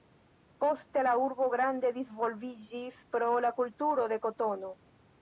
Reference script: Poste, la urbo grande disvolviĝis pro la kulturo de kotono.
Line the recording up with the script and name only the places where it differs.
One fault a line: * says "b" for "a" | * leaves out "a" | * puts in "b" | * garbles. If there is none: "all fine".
all fine